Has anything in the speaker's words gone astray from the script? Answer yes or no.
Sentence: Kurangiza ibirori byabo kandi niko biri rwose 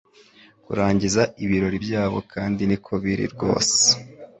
no